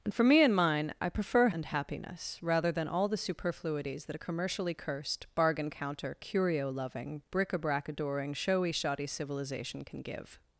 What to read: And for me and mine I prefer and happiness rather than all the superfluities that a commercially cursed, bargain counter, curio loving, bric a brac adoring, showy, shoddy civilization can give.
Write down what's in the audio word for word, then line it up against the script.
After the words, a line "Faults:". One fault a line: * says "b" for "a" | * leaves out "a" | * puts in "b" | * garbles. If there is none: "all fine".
And for me and mine I prefer and happiness rather than all the superfluities that a commercially cursed, bargain counter, curio loving, bric a brac adoring, showy, shoddy civilization can give.
Faults:
all fine